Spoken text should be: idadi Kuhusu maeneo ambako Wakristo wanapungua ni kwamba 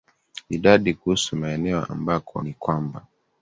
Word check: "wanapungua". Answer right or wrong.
wrong